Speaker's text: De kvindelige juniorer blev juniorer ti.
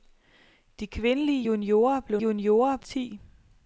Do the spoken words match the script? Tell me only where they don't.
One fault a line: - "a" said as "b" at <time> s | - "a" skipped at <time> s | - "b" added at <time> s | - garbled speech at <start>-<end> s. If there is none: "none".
none